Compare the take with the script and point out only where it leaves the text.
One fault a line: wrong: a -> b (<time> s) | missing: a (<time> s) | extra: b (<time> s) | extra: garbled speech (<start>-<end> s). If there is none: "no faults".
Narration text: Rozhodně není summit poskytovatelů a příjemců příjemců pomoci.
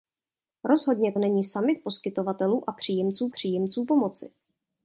no faults